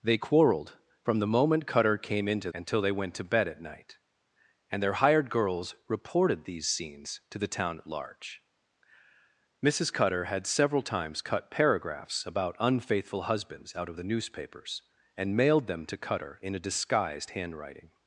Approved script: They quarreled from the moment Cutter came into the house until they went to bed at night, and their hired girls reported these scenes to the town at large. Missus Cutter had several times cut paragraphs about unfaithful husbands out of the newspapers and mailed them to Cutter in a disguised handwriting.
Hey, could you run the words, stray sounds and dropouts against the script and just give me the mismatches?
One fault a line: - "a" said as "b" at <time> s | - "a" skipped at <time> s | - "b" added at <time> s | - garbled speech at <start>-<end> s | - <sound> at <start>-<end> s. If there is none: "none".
- "the house" skipped at 2.5 s